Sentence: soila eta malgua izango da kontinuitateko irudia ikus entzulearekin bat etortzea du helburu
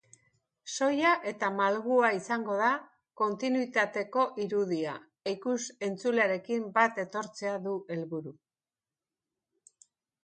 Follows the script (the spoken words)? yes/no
yes